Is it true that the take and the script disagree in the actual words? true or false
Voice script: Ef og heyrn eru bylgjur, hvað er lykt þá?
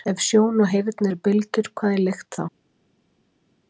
true